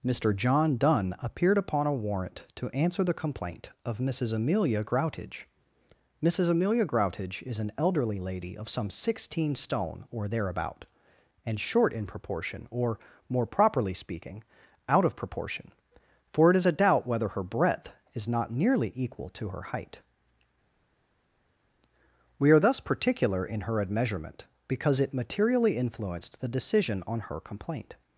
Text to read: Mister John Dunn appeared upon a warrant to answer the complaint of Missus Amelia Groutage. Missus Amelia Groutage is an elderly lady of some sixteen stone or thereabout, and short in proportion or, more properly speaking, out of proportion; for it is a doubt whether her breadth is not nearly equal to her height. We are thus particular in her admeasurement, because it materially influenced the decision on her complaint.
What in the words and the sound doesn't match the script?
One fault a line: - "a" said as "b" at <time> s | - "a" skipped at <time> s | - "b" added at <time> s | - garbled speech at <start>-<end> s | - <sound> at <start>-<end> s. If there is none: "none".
none